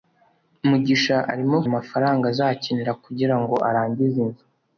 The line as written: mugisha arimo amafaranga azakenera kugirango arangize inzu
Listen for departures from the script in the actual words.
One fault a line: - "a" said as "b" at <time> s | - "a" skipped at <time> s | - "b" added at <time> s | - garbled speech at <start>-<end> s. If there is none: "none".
none